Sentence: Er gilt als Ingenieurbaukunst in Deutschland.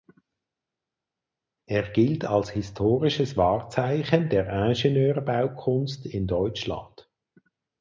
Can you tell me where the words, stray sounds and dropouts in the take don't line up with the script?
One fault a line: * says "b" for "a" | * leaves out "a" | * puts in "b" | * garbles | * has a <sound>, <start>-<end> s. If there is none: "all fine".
* puts in "historisches Wahrzeichen der"